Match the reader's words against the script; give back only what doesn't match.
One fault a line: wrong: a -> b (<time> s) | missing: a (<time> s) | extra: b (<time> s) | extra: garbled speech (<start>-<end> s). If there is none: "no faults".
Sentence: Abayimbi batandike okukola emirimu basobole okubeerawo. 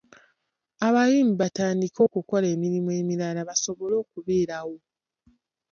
extra: emirala (3.0 s)